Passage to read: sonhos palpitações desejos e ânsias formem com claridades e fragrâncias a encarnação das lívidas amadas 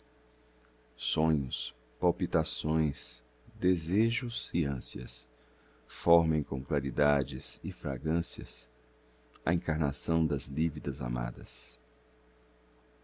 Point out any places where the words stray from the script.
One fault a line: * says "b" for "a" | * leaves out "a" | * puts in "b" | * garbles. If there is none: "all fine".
all fine